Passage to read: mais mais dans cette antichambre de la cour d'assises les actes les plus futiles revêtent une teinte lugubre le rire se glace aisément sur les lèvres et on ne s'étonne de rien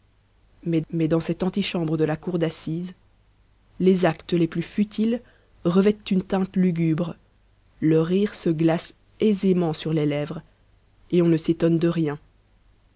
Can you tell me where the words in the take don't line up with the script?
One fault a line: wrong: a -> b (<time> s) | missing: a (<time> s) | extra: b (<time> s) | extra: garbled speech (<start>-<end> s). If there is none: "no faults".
no faults